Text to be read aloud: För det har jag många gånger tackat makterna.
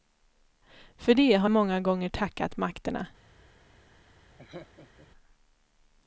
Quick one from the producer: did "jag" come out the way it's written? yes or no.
no